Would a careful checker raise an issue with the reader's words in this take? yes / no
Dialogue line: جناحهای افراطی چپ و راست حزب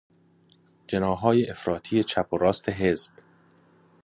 no